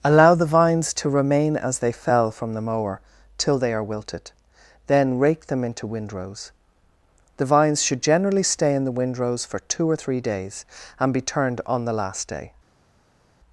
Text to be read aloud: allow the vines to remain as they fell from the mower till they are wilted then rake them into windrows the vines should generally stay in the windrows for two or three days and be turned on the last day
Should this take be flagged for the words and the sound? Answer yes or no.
no